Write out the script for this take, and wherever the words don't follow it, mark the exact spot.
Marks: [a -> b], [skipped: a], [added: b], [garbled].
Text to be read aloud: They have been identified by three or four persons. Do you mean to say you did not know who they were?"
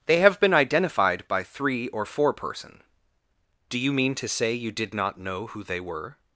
They have been identified by three or four [persons. -> person] Do you mean to say you did not know who they were?"